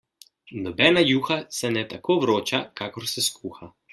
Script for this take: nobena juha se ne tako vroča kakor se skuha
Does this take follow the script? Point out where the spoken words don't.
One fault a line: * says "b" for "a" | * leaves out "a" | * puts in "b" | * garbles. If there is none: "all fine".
all fine